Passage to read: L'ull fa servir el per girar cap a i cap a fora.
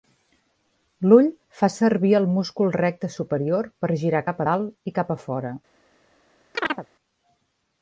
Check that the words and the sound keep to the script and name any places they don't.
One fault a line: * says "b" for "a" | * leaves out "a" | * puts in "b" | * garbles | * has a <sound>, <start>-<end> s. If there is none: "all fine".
* puts in "múscul recte superior"
* puts in "dalt"
* has a chirp, 6.5-6.9 s